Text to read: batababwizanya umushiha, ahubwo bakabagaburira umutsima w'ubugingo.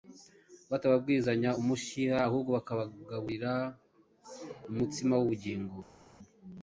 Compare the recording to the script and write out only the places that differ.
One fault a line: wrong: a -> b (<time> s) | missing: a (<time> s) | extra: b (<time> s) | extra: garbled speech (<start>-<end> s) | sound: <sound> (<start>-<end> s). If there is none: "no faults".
no faults